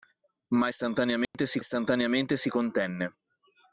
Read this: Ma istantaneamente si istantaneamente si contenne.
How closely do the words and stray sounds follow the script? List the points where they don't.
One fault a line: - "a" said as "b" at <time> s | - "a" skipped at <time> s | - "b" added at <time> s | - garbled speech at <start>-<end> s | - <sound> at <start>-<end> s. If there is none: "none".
- dropout at 1.2-1.3 s